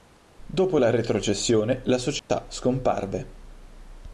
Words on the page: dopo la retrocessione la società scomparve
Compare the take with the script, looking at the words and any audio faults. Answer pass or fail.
fail